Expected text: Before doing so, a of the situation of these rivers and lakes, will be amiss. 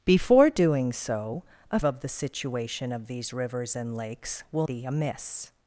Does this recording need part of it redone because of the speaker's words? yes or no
no